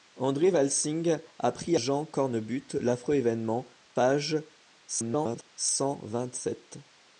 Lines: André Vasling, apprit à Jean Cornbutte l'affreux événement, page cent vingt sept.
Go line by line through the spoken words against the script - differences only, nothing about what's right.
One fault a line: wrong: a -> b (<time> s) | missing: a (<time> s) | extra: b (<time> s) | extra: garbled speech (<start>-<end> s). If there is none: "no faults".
missing: à (1.8 s)
extra: garbled speech (4.9-5.5 s)